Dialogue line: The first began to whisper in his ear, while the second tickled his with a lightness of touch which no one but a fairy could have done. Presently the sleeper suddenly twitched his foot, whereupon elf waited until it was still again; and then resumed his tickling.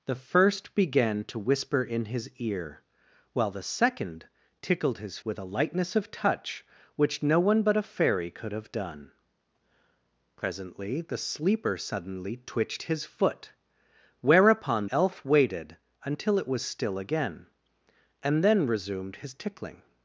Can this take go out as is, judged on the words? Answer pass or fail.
pass